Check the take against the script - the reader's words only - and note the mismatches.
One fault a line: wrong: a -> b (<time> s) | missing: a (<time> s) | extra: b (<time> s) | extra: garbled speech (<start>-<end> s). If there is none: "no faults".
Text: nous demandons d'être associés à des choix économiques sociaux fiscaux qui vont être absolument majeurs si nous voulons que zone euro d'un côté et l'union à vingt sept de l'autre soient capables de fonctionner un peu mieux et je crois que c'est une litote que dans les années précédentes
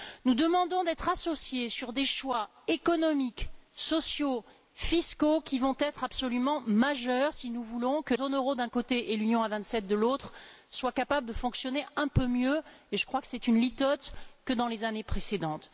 no faults